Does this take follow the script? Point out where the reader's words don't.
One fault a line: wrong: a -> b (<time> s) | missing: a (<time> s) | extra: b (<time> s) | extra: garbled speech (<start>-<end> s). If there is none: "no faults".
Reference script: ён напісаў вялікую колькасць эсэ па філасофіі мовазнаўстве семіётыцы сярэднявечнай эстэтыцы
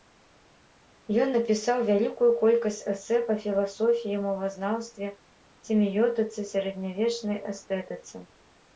no faults